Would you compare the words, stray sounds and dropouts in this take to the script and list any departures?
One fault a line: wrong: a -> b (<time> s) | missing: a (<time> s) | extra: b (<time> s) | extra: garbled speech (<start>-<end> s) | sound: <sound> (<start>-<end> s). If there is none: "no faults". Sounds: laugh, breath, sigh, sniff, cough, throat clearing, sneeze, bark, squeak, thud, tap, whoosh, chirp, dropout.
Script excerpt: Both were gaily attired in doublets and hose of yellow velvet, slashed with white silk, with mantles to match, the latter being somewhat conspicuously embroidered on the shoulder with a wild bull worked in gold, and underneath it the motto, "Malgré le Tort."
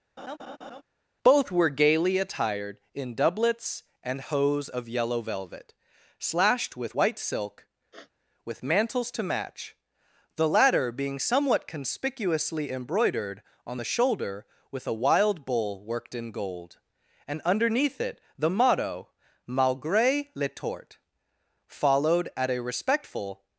sound: laugh (0.2-0.8 s)
sound: sniff (7.9-8.1 s)
extra: Followed at a respectful (21.7 s)